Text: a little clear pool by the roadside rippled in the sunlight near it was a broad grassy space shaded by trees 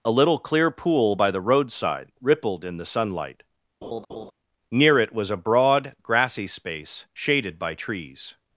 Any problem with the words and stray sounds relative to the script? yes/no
yes